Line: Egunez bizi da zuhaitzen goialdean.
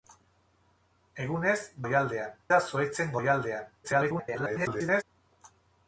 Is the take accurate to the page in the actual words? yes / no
no